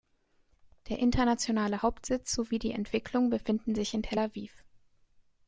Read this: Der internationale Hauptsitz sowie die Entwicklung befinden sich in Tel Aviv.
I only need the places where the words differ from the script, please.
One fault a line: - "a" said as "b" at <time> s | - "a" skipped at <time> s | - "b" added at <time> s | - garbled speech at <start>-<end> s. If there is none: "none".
none